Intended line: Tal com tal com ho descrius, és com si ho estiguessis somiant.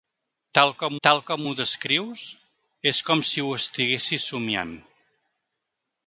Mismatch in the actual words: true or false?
false